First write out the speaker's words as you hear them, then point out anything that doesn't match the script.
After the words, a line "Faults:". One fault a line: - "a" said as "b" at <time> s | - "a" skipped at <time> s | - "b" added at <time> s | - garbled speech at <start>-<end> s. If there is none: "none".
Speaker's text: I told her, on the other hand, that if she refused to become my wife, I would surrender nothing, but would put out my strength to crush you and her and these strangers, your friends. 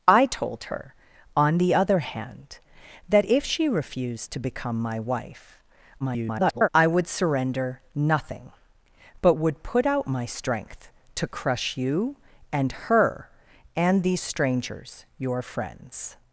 I told her, on the other hand, that if she refused to become my wife, [garbled] I would surrender nothing, but would put out my strength to crush you and her and these strangers, your friends.
Faults:
- garbled speech at 6.0-6.7 s